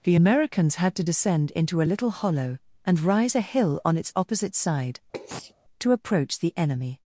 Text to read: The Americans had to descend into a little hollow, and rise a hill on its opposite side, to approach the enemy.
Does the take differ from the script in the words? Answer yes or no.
no